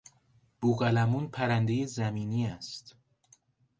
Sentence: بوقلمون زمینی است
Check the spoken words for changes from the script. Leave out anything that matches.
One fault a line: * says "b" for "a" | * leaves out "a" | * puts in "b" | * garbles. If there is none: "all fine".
* puts in "پرندهی"